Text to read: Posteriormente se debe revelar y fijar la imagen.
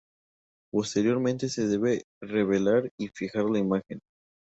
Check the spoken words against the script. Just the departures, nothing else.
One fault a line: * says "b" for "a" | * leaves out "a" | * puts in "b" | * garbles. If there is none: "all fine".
all fine